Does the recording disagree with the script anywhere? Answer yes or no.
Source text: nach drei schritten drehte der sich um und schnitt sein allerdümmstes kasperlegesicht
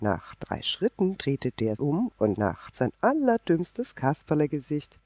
yes